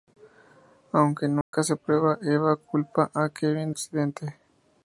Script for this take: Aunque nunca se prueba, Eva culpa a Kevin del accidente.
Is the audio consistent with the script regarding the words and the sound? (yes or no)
no